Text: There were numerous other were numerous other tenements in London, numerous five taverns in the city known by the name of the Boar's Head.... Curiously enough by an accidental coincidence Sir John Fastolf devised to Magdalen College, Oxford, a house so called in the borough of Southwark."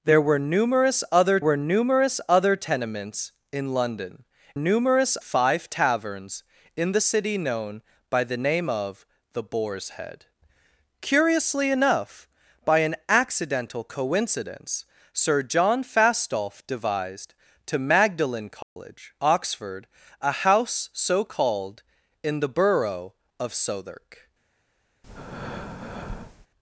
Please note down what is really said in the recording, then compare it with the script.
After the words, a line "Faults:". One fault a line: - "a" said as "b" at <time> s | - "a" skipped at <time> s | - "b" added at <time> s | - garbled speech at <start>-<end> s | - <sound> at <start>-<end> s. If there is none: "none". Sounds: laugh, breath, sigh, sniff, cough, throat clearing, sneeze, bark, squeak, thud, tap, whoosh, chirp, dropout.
There were numerous other were numerous other tenements in London, numerous five taverns in the city known by the name of the Boar's Head.... Curiously enough by an accidental coincidence Sir John Fastolf devised to Magdalen College, Oxford, a house so called in the borough of Southwark."
Faults:
- dropout at 18.6-18.8 s
- breath at 25.0-26.5 s